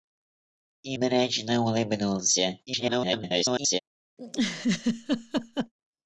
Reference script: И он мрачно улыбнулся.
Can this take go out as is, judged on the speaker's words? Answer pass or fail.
fail